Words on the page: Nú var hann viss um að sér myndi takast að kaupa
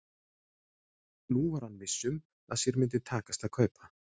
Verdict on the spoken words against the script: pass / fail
pass